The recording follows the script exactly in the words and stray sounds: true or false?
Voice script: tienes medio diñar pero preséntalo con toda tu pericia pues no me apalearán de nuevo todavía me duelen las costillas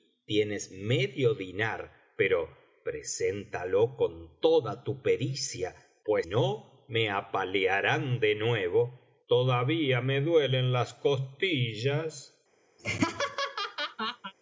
false